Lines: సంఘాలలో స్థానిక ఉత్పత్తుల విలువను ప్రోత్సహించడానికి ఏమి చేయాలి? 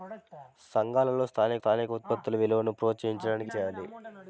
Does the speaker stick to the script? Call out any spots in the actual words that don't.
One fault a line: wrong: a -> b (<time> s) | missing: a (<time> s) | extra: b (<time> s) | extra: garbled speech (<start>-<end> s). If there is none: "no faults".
extra: స్థానిక (1.5 s)
missing: ఏమి (3.5 s)